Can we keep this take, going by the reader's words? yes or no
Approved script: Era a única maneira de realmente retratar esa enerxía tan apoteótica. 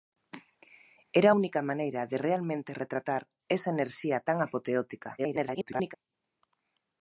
no